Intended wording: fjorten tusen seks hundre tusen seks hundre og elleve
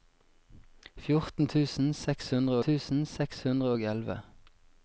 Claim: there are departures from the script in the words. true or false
false